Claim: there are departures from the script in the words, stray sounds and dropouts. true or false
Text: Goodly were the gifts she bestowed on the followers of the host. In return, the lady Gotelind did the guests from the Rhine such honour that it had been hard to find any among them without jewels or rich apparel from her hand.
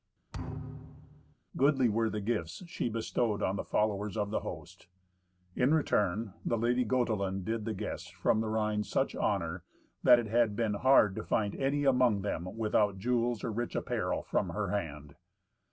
true